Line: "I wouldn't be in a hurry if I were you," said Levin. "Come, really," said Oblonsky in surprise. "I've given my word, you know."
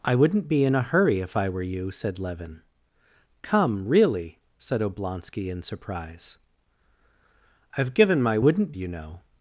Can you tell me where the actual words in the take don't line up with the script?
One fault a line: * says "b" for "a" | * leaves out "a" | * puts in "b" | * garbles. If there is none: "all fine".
* says "wouldn't" for "word"